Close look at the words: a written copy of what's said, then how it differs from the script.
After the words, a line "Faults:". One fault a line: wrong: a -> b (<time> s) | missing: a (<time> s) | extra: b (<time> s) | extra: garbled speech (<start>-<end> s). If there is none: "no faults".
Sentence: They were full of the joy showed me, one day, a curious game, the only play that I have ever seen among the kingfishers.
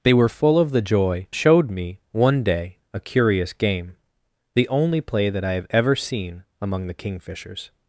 They were full of the joy showed me, one day, a curious game, the only play that I have ever seen among the kingfishers.
Faults:
no faults